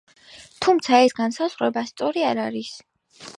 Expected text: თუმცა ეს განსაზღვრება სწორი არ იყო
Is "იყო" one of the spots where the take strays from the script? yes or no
yes